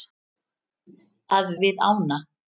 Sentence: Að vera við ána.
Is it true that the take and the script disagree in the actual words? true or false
true